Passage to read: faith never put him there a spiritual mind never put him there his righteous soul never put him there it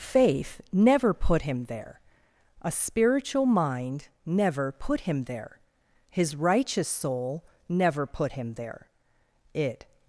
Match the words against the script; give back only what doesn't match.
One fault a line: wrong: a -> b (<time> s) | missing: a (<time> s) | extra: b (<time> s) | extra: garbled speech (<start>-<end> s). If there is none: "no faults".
no faults